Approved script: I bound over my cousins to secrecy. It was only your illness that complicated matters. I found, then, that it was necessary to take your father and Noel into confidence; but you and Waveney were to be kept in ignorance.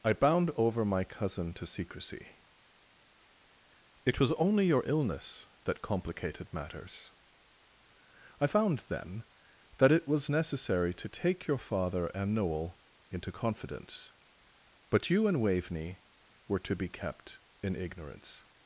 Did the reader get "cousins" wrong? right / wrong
wrong